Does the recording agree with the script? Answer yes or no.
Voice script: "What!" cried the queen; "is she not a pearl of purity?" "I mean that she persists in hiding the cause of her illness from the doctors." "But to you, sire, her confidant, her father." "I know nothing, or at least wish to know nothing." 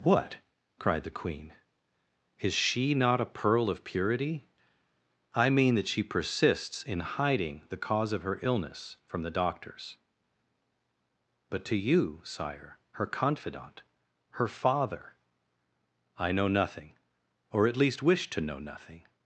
yes